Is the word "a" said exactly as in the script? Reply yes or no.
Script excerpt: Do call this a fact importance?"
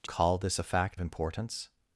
yes